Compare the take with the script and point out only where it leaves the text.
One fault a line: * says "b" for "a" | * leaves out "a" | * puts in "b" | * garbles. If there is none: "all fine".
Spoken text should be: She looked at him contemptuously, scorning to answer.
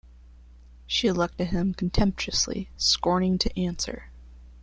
all fine